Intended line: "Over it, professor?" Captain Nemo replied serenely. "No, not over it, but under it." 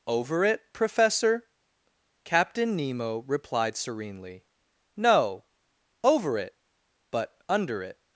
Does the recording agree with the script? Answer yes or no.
no